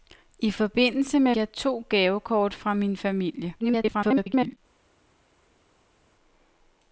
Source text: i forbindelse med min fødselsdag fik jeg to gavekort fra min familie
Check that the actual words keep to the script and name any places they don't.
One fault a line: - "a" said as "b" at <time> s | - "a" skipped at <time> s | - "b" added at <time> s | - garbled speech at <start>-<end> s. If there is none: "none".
- "min fødselsdag fik" skipped at 1.4 s
- garbled speech at 3.6-4.6 s